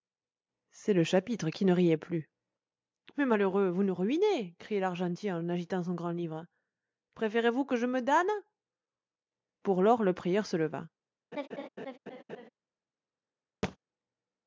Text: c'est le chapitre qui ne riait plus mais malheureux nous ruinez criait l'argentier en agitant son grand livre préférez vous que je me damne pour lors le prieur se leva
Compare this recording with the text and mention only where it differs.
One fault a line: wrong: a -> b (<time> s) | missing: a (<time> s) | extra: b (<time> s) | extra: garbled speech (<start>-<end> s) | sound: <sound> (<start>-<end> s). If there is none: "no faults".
extra: vous (3.7 s)
sound: laugh (11.3-12.5 s)
sound: thud (13.6-13.8 s)